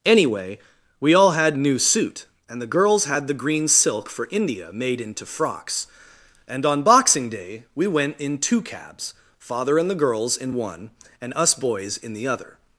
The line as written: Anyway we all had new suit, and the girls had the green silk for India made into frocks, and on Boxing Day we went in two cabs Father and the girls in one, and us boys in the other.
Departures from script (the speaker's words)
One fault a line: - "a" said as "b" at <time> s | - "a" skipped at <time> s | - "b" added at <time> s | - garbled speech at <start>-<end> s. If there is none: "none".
none